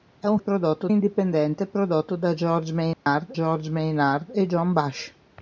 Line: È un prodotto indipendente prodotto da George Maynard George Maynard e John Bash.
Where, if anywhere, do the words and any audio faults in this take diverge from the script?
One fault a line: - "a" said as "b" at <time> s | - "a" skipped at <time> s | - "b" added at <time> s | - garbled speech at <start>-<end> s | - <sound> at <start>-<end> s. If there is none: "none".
- dropout at 2.9-3.1 s